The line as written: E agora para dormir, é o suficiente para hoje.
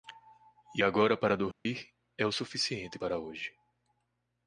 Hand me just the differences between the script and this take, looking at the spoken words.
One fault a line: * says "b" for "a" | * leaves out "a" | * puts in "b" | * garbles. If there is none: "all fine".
all fine